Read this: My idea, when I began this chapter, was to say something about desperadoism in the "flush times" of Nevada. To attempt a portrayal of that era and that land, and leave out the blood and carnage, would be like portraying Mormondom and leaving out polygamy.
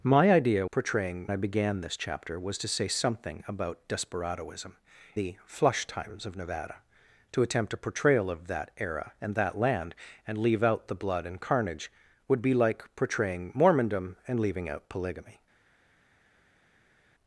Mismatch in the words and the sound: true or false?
true